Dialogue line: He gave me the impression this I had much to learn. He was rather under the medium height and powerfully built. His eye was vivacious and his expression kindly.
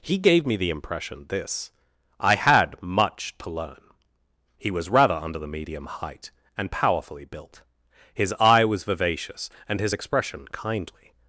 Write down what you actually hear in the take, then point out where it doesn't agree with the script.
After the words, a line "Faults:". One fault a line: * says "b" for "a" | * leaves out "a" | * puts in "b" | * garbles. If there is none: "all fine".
He gave me the impression this I had much to learn. He was rather under the medium height and powerfully built. His eye was vivacious and his expression kindly.
Faults:
all fine